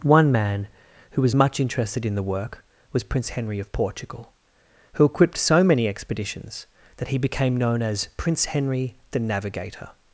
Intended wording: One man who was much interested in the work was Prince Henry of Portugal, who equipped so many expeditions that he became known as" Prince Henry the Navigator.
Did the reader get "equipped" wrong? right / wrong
right